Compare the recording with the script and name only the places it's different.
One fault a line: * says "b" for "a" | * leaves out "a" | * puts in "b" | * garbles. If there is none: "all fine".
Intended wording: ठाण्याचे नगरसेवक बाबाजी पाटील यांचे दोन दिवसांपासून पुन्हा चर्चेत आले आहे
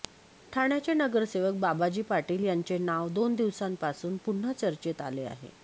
* puts in "नाव"